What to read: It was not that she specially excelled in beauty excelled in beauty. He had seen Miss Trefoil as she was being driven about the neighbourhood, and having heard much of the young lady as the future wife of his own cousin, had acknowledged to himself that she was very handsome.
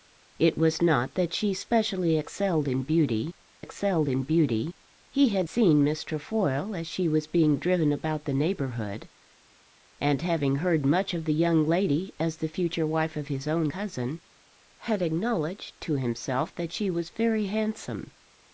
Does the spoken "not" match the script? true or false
true